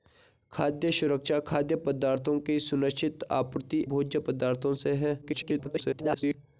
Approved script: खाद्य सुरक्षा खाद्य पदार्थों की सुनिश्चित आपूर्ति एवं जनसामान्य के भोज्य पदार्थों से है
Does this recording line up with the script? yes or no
no